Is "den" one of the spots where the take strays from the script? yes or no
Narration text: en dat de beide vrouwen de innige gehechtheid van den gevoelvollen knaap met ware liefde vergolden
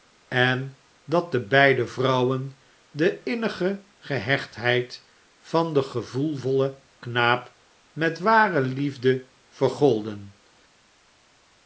no